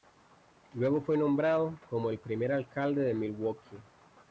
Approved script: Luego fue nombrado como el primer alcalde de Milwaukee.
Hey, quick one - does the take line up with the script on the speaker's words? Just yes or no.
yes